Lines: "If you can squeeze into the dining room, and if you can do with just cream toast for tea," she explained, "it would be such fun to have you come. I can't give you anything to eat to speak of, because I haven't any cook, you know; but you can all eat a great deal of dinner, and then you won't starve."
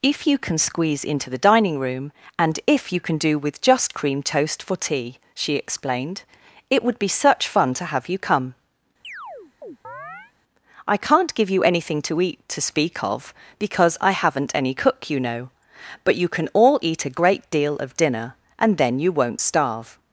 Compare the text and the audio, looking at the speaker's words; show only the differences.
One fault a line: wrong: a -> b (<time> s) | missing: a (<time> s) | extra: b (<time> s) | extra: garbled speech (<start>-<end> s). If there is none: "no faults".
no faults